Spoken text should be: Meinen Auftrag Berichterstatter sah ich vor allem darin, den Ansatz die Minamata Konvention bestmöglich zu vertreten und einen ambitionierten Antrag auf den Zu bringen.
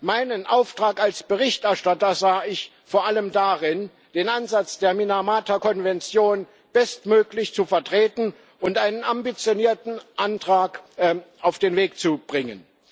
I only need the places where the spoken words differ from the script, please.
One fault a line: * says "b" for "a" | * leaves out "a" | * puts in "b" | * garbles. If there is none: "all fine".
* puts in "als"
* says "der" for "die"
* puts in "Weg"